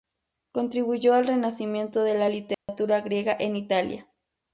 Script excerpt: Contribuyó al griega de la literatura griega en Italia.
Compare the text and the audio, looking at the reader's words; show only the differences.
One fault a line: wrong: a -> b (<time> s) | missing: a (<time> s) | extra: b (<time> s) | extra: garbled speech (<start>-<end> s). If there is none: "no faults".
wrong: griega -> renacimiento (1.3 s)